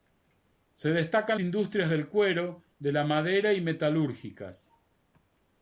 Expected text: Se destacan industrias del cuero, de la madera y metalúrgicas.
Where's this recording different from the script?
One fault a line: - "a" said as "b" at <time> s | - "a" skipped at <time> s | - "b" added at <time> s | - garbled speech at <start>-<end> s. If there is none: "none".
none